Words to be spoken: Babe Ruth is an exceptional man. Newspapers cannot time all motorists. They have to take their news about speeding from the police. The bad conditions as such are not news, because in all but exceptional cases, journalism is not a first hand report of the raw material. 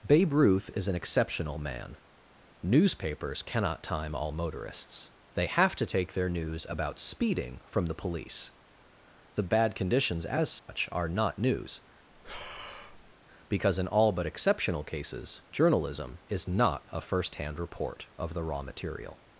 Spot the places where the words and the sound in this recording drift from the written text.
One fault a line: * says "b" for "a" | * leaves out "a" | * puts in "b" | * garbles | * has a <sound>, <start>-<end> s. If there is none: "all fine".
* has a dropout, 10.6-10.7 s
* has a breath, 12.1-13.2 s